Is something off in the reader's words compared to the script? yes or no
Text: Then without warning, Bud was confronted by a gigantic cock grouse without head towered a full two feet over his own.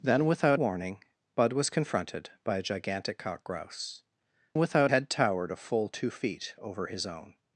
no